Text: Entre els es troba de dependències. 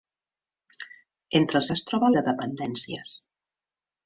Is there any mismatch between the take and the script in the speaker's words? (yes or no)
no